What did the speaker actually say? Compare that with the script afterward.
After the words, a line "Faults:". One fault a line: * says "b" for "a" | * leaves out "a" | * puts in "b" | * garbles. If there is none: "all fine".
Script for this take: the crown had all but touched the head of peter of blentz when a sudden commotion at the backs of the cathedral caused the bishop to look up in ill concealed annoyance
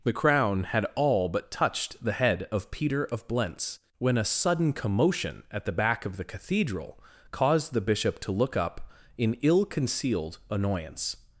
the crown had all but touched the head of peter of blentz when a sudden commotion at the back of the cathedral caused the bishop to look up in ill concealed annoyance
Faults:
* says "back" for "backs"